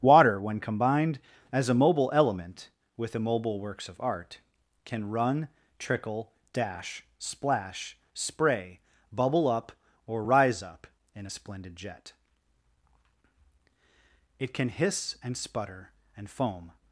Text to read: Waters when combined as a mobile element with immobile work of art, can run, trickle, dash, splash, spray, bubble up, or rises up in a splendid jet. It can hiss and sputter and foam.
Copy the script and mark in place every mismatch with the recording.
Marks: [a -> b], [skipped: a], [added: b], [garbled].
[Waters -> Water] when combined as a mobile element with immobile [work -> works] of art, can run, trickle, dash, splash, spray, bubble up, or [rises -> rise] up in a splendid jet. It can hiss and sputter and foam.